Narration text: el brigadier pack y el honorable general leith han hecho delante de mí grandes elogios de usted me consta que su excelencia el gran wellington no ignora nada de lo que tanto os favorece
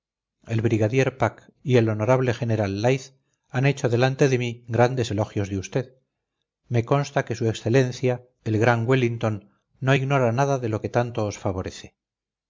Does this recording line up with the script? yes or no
yes